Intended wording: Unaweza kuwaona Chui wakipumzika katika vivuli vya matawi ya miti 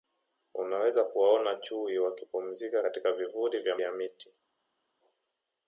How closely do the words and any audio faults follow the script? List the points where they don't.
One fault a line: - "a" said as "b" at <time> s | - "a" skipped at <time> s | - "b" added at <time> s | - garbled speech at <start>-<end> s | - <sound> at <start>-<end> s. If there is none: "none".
- "matawi" skipped at 3.8 s